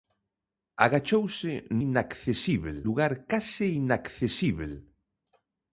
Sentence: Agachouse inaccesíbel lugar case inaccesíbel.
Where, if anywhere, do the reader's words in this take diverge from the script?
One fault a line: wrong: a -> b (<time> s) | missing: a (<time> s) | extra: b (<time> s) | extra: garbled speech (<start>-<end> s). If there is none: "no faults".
no faults